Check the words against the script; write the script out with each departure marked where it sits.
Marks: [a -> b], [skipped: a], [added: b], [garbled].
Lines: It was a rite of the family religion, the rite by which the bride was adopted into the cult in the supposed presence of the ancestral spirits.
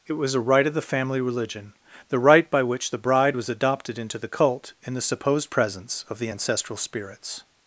It was a rite of the family religion, the rite by which the bride was adopted into the cult in the supposed presence of the ancestral spirits.